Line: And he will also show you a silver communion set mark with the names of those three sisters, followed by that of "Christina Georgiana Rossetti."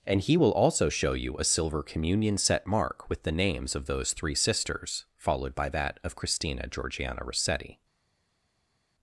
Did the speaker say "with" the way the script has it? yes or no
yes